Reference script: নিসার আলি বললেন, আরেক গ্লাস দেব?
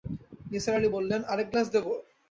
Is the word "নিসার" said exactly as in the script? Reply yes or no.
yes